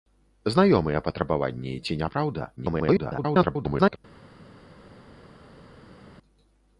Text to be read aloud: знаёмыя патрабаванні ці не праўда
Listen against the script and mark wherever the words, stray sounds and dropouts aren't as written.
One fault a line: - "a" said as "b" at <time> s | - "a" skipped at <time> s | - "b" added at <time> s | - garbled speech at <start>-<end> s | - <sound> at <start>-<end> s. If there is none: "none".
- garbled speech at 2.6-4.0 s